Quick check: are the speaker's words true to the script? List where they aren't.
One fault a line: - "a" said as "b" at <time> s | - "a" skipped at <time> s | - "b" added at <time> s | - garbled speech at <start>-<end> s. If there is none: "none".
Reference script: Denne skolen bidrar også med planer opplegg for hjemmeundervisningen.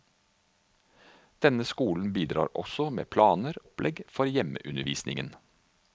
none